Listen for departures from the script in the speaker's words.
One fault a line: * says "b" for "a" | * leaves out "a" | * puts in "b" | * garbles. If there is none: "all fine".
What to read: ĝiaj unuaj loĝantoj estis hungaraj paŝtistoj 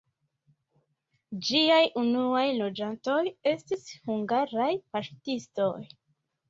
all fine